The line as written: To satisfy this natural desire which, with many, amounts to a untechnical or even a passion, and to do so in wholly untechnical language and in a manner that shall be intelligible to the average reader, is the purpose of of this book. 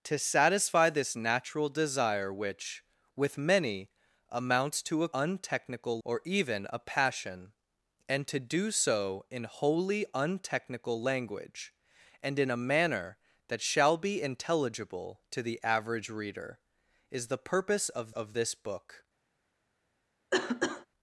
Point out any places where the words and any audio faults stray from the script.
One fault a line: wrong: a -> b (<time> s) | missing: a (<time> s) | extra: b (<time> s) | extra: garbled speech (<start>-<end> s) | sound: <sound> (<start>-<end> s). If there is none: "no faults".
sound: cough (20.3-20.9 s)